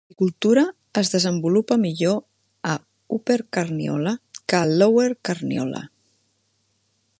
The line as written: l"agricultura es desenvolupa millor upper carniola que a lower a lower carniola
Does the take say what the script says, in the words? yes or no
no